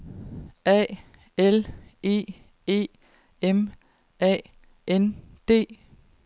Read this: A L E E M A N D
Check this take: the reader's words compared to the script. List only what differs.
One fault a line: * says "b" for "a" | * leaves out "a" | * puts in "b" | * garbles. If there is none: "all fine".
all fine